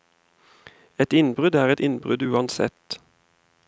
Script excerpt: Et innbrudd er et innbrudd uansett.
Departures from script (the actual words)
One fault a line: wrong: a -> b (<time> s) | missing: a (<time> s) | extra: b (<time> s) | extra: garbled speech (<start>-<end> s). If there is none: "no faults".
no faults